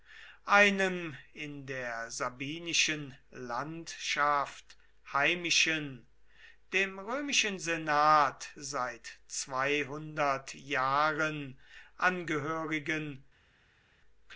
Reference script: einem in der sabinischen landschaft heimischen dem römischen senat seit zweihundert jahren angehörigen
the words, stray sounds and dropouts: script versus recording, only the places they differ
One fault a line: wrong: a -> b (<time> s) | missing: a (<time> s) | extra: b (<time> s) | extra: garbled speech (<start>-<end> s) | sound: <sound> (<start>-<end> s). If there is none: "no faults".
no faults